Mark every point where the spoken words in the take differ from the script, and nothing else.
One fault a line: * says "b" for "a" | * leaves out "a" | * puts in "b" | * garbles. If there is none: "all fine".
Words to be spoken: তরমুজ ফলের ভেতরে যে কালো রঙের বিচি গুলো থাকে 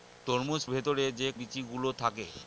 * leaves out "ফলের"
* leaves out "কালো রঙের"